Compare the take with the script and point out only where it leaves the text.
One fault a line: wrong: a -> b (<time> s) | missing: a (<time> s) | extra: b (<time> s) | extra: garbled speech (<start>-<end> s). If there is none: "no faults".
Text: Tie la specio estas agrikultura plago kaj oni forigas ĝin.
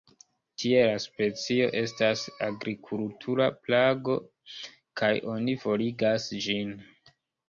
no faults